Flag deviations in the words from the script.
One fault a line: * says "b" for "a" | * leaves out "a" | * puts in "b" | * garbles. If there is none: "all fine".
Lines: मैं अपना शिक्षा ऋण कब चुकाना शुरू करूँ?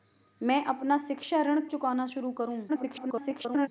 * leaves out "कब"
* garbles